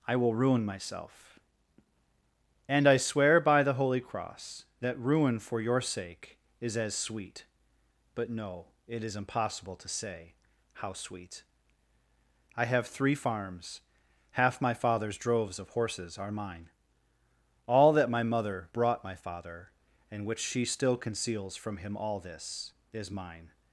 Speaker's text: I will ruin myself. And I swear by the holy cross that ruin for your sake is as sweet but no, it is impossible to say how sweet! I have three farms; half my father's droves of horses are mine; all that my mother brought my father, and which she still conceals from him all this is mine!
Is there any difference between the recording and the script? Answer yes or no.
no